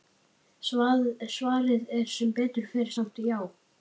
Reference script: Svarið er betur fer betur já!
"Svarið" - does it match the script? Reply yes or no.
yes